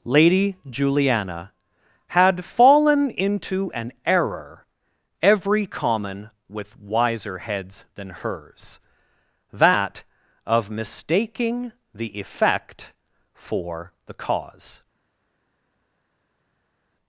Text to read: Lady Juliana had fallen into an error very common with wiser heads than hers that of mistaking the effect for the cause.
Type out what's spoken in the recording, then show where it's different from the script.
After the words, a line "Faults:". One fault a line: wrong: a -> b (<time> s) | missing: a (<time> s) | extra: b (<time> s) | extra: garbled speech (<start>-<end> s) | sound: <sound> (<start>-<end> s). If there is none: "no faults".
Lady Juliana had fallen into an error every common with wiser heads than hers that of mistaking the effect for the cause.
Faults:
wrong: very -> every (5.2 s)